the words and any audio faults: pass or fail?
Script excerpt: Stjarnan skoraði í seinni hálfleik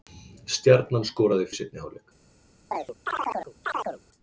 fail